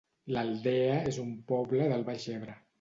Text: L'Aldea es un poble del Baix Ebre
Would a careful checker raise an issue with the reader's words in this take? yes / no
no